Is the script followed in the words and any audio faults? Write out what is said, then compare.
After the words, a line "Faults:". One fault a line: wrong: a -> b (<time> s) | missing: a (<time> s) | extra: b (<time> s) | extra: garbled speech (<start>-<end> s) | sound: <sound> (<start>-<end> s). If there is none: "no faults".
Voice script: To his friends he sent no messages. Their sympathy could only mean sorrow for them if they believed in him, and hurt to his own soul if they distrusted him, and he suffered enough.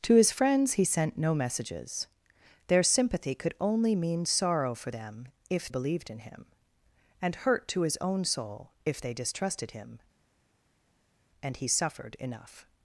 To his friends he sent no messages. Their sympathy could only mean sorrow for them if believed in him, and hurt to his own soul if they distrusted him, and he suffered enough.
Faults:
missing: they (5.7 s)